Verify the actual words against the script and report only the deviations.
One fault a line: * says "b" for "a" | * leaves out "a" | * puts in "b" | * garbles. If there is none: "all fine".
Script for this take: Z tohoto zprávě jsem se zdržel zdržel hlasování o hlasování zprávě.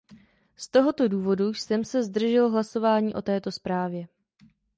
* says "důvodu" for "zprávě"
* leaves out "zdržel"
* says "této" for "hlasování"